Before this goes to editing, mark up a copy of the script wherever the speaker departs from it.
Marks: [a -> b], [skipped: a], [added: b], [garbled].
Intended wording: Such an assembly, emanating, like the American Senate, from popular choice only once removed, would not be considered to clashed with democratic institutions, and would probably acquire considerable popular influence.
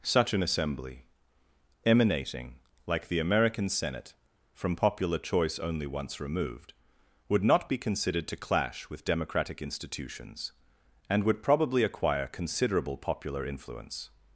Such an assembly, emanating, like the American Senate, from popular choice only once removed, would not be considered to [clashed -> clash] with democratic institutions, and would probably acquire considerable popular influence.